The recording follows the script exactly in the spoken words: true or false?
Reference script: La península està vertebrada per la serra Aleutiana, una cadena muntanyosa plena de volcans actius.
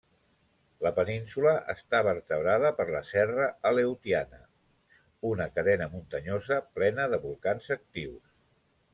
true